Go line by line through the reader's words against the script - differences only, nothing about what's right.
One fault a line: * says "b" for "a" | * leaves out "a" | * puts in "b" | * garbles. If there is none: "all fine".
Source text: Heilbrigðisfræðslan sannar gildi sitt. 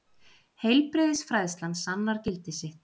all fine